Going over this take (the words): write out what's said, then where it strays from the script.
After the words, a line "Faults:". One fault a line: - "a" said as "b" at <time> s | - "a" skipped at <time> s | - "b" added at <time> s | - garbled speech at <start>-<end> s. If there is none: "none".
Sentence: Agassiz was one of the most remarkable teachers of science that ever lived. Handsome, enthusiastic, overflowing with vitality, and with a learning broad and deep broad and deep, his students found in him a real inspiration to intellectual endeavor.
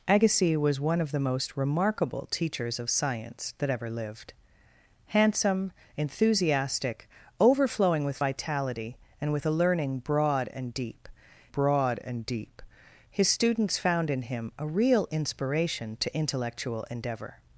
Agassiz was one of the most remarkable teachers of science that ever lived. Handsome, enthusiastic, overflowing with vitality, and with a learning broad and deep broad and deep, his students found in him a real inspiration to intellectual endeavor.
Faults:
none